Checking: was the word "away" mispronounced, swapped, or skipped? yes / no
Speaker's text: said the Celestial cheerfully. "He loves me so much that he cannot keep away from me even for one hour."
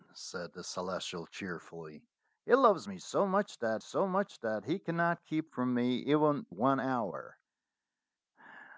yes